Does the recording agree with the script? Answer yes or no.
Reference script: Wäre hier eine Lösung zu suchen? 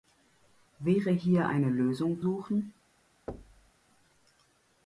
no